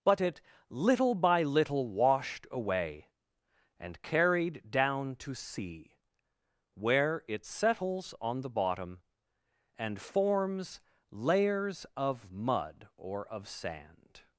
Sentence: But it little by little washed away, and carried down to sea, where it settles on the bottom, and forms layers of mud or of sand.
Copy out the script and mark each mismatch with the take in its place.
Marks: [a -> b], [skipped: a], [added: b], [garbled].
But it little by little washed away, and carried down to sea, where it settles on the bottom, and forms layers of mud or of sand.